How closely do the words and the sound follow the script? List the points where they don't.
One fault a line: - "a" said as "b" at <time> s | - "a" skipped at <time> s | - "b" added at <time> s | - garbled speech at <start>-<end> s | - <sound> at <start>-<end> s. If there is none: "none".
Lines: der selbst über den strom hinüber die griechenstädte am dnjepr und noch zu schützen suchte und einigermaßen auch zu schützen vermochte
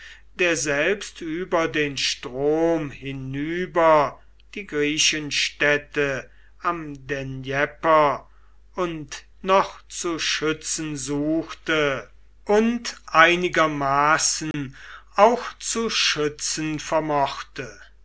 - dropout at 14.5-14.5 s